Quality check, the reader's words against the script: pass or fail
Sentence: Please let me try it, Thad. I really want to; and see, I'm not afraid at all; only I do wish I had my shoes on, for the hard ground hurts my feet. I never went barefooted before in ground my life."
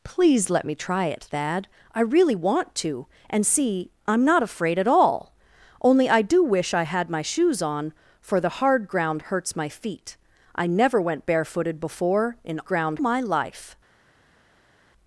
pass